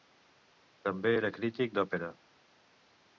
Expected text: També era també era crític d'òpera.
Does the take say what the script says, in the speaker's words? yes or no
no